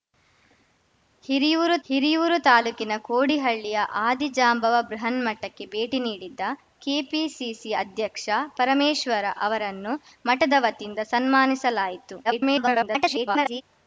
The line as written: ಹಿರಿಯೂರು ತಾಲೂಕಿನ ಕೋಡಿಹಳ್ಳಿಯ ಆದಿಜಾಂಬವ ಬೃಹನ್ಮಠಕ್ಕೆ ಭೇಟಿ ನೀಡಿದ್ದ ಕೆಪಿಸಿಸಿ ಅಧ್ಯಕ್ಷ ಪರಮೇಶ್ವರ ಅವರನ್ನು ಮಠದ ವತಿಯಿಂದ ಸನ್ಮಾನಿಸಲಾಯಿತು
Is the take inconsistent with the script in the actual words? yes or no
yes